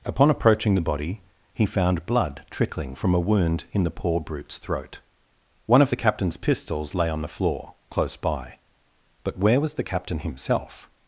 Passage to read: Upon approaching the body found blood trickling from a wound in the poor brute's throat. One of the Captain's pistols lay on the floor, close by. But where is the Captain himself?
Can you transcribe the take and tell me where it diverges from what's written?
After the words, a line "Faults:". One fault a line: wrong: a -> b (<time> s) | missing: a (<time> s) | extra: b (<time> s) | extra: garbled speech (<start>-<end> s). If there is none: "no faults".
Upon approaching the body he found blood trickling from a wound in the poor brute's throat. One of the Captain's pistols lay on the floor, close by. But where was the Captain himself?
Faults:
extra: he (1.5 s)
wrong: is -> was (9.6 s)